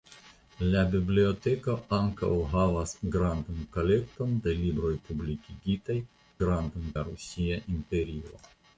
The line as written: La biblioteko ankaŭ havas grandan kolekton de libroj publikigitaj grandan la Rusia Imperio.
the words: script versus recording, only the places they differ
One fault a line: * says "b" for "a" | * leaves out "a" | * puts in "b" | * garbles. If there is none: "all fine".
all fine